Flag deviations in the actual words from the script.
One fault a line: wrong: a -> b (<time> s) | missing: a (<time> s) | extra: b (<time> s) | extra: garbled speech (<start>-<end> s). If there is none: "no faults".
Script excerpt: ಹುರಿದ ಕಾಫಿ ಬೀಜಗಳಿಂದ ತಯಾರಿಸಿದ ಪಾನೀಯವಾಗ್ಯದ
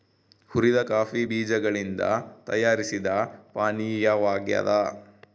no faults